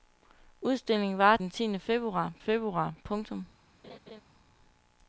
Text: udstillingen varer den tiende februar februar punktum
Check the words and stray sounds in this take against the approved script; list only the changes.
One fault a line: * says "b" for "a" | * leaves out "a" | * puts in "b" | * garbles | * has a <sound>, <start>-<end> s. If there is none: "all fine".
* has a laugh, 3.8-4.2 s